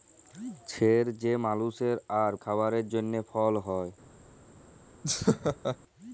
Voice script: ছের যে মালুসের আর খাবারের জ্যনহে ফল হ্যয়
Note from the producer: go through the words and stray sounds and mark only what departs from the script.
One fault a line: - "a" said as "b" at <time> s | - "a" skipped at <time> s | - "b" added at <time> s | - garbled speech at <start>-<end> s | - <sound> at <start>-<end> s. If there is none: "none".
- laugh at 5.0-5.8 s